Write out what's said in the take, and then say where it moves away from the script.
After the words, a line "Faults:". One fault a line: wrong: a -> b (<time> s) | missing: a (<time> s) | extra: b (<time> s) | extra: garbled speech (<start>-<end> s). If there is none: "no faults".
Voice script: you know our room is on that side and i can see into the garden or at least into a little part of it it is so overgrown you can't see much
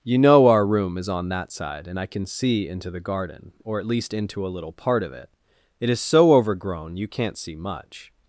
you know our room is on that side and i can see into the garden or at least into a little part of it it is so overgrown you can't see much
Faults:
no faults